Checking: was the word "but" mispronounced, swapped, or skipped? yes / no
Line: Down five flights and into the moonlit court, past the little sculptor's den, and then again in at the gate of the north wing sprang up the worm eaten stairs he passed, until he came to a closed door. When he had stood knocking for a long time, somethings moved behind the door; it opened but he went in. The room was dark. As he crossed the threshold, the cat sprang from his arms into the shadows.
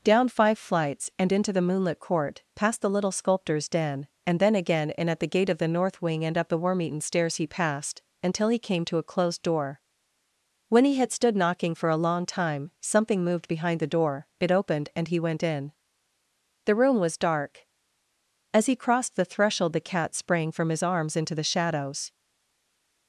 yes